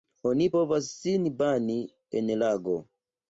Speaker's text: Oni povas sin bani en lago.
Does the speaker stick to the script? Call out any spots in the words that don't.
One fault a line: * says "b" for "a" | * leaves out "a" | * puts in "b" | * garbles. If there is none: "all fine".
all fine